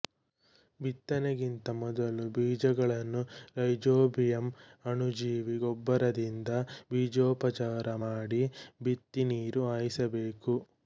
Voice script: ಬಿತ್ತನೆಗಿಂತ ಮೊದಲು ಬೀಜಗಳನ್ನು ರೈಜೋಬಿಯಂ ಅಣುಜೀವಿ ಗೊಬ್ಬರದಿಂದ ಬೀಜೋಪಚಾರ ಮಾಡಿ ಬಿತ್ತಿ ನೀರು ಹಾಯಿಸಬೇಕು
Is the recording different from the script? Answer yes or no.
no